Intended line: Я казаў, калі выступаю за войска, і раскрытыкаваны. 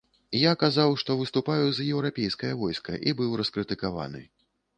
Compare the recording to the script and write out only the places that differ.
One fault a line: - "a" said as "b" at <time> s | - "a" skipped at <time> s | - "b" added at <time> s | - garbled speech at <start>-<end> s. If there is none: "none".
- "калі" said as "што" at 1.0 s
- "еўрапейскае" added at 2.0 s
- "быў" added at 3.2 s